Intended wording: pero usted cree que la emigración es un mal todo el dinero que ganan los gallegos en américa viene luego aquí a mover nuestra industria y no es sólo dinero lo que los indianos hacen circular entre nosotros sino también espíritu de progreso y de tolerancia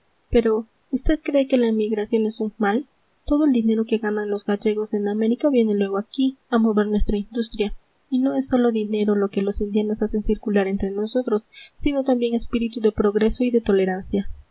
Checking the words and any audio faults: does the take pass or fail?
pass